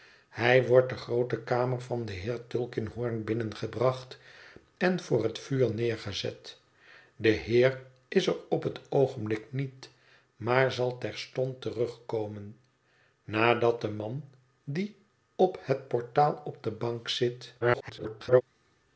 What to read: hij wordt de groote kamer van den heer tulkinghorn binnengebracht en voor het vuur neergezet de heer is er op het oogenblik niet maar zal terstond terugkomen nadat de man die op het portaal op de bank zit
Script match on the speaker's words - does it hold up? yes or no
no